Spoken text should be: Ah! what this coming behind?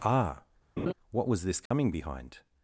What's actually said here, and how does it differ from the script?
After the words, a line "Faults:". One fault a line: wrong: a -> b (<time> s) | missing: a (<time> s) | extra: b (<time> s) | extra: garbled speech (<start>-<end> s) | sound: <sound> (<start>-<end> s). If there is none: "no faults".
Ah! what was this coming behind?
Faults:
sound: laugh (0.8-0.9 s)
extra: was (1.3 s)
sound: dropout (1.7-1.7 s)